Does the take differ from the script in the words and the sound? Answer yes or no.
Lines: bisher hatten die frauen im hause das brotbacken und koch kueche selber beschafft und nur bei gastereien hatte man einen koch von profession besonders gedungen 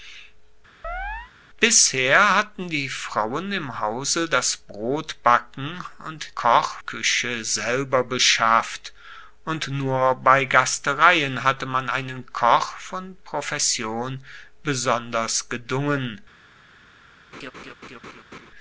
yes